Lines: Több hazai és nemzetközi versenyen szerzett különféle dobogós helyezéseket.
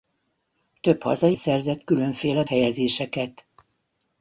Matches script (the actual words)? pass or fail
fail